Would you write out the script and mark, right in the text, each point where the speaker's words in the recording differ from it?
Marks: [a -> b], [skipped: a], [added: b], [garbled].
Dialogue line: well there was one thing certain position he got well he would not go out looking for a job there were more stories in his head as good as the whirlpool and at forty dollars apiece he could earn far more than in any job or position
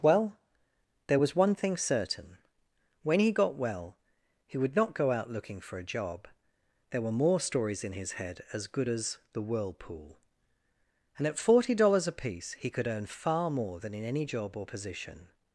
well there was one thing certain [position -> when] he got well he would not go out looking for a job there were more stories in his head as good as the whirlpool and at forty dollars apiece he could earn far more than in any job or position